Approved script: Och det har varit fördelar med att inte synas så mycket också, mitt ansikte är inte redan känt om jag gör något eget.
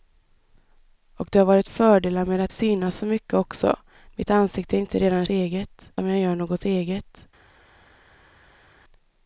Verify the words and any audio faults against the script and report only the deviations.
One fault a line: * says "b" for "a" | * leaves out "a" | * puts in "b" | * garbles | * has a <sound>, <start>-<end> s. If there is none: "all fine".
* leaves out "inte"
* says "eget" for "känt"